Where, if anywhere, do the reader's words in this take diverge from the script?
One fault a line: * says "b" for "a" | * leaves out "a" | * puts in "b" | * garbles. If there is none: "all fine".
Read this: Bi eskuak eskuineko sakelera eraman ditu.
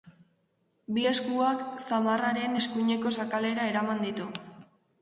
* puts in "zamarraren"